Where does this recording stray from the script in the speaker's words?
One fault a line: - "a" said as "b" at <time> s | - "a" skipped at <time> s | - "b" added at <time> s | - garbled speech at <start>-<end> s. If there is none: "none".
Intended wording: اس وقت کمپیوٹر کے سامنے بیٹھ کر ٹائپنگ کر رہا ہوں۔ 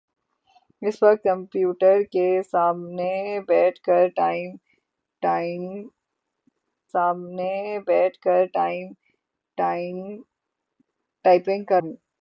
- "سامنے بیٹھ کر" added at 6.9 s
- "رہا" skipped at 11.8 s